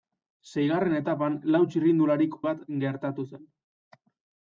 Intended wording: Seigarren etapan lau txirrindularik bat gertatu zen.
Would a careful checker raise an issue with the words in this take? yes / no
no